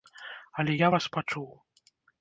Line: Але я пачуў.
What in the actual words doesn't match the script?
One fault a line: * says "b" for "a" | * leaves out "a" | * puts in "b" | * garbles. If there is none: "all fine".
* puts in "вас"